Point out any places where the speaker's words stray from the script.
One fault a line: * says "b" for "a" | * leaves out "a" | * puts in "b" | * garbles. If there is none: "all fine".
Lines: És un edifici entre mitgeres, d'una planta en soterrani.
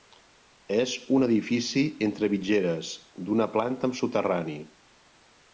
* says "amb" for "en"